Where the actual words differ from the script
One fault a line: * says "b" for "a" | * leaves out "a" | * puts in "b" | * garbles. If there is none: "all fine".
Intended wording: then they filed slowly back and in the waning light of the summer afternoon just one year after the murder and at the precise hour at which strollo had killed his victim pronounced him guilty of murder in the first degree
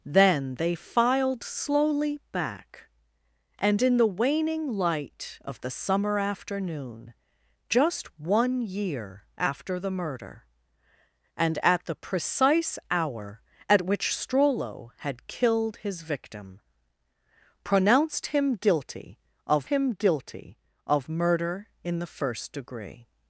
* puts in "him guilty of"